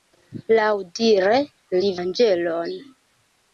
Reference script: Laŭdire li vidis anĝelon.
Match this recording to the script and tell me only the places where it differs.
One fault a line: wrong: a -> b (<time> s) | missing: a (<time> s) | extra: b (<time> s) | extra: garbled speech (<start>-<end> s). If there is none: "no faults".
missing: vidis (1.9 s)